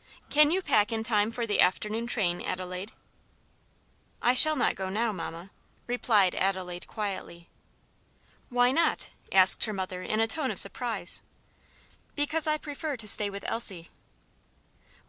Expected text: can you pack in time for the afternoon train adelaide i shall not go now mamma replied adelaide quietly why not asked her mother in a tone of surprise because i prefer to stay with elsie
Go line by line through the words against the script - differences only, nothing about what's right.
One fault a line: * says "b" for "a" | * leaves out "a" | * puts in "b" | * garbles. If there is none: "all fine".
all fine